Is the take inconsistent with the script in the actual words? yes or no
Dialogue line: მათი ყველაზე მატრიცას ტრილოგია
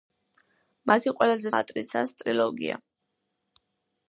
no